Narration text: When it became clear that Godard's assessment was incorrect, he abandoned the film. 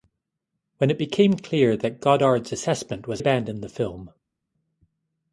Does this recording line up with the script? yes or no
no